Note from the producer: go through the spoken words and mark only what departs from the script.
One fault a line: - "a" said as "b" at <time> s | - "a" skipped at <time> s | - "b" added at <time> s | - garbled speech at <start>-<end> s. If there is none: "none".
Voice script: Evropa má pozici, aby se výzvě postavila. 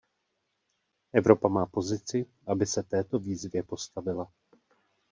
- "této" added at 2.8 s